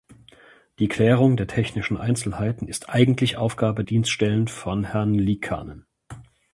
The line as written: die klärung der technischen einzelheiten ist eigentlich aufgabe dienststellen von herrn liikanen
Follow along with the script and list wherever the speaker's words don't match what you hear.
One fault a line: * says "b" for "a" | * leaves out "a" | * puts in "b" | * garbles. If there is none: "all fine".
all fine